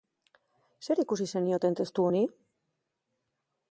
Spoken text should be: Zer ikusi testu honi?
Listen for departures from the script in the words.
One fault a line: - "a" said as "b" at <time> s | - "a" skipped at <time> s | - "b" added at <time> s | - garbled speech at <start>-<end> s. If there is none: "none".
- "zenioten" added at 1.4 s